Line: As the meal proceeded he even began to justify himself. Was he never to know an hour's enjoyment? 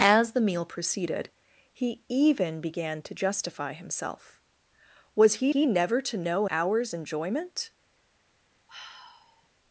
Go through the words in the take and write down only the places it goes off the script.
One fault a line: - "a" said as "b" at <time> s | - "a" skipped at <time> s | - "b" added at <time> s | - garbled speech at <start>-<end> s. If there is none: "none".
- "he" added at 5.5 s
- "an" skipped at 6.4 s